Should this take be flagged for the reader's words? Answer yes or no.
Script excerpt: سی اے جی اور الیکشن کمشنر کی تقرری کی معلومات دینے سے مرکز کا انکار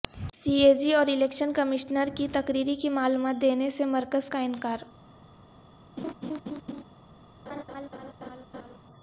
no